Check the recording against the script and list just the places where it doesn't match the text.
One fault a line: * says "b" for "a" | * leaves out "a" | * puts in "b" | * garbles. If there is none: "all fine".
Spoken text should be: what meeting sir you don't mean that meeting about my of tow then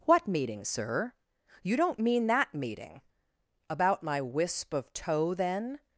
* puts in "wisp"